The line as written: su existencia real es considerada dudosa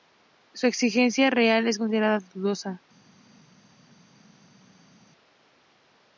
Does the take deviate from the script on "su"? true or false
false